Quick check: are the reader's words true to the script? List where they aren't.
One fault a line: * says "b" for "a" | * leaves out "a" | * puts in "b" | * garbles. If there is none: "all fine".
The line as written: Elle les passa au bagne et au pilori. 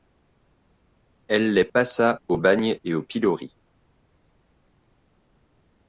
all fine